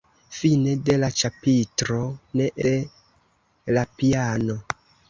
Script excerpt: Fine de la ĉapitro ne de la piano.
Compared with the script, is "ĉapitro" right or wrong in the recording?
right